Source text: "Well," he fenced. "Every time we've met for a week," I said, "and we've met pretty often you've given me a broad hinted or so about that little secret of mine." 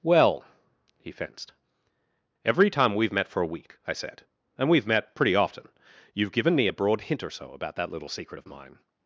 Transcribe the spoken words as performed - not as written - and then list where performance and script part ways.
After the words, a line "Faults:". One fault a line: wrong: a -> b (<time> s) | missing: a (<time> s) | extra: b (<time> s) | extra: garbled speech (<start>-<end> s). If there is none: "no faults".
"Well," he fenced. "Every time we've met for a week," I said, "and we've met pretty often you've given me a broad hint or so about that little secret of mine."
Faults:
wrong: hinted -> hint (7.0 s)